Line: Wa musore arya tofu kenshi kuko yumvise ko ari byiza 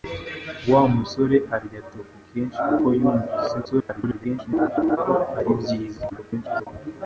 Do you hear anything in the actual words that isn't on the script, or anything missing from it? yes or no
yes